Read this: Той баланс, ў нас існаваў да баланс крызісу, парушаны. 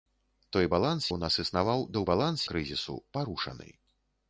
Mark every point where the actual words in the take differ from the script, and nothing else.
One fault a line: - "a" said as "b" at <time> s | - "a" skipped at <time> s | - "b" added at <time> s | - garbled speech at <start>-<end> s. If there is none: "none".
none